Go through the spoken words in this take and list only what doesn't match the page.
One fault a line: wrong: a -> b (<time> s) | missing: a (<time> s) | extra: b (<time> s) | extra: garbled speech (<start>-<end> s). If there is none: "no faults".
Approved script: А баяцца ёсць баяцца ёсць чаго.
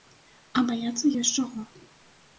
missing: баяцца ёсць (1.3 s)